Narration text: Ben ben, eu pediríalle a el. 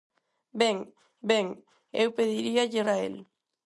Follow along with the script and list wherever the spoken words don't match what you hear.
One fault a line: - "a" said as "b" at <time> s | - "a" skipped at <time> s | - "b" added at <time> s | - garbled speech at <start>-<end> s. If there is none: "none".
none